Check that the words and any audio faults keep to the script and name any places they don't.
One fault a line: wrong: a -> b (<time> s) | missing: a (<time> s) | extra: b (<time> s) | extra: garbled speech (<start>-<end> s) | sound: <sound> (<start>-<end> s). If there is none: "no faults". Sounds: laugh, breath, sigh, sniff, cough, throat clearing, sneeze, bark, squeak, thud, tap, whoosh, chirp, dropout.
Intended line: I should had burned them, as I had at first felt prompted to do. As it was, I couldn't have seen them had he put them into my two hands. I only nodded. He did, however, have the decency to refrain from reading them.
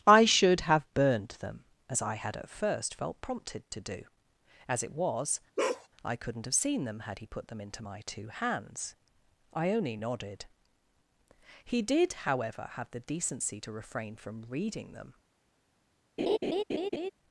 wrong: had -> have (0.6 s)
sound: bark (5.6-5.9 s)
sound: laugh (16.2-17.1 s)